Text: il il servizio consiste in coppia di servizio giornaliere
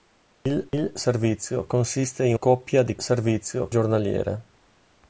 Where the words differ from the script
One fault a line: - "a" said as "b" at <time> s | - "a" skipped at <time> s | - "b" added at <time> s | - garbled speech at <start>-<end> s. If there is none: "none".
none